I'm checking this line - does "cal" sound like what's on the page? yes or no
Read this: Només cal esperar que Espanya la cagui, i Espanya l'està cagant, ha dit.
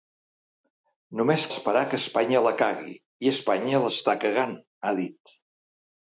no